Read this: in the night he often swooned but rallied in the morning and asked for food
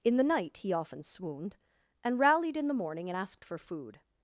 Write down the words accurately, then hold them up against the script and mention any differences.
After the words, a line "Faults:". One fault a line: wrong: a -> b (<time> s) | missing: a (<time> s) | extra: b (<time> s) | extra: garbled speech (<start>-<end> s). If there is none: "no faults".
in the night he often swooned and rallied in the morning and asked for food
Faults:
wrong: but -> and (2.0 s)